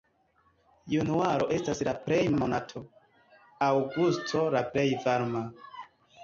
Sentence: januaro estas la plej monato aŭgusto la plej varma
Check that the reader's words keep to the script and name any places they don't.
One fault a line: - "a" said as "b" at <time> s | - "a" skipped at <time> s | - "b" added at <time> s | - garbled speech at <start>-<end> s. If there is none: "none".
none